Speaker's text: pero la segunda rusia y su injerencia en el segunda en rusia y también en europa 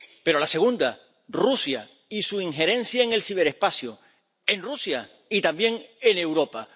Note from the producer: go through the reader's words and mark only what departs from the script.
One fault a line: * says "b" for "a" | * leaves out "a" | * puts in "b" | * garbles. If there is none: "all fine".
* says "ciberespacio" for "segunda"